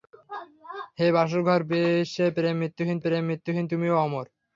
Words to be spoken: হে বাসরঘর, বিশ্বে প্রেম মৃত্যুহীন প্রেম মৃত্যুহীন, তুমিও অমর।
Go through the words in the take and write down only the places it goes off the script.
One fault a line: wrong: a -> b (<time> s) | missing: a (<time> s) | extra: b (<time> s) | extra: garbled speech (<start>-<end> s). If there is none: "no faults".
no faults